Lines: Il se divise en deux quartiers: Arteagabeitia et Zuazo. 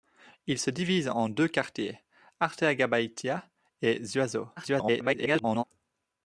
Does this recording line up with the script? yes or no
no